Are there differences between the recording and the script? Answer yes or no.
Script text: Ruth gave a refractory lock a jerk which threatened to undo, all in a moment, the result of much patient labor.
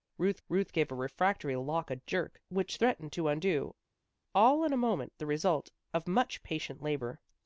yes